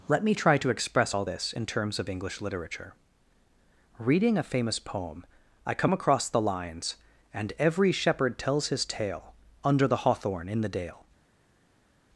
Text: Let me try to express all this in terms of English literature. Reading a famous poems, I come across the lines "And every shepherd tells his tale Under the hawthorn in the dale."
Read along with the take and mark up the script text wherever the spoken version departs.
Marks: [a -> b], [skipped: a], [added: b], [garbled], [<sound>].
Let me try to express all this in terms of English literature. Reading a famous [poems, -> poem] I come across the lines "And every shepherd tells his tale Under the hawthorn in the dale."